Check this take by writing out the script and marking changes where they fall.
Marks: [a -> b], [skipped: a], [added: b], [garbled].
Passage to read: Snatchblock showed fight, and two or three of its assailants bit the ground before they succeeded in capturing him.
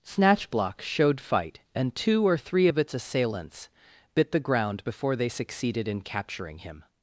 Snatchblock showed fight, and two or three of its assailants bit the ground before they succeeded in capturing him.